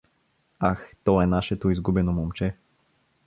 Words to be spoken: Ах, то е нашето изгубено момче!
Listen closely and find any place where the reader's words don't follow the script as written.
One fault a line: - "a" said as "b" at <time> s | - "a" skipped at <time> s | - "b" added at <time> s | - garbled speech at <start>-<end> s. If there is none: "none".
none